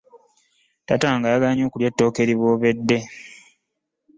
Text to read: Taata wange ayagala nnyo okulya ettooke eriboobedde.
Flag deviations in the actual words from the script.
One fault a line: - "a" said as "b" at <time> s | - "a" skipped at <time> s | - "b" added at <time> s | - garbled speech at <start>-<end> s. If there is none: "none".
none